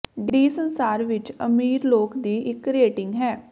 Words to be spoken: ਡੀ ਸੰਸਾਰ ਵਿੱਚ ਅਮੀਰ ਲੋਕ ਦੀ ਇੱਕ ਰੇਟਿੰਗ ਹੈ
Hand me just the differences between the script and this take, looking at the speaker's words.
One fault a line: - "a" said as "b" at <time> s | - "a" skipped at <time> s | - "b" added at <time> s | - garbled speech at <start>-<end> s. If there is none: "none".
none